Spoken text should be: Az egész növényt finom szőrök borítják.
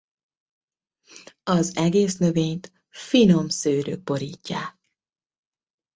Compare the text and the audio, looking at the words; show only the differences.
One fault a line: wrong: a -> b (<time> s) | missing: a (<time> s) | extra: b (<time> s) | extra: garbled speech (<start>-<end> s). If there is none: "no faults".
no faults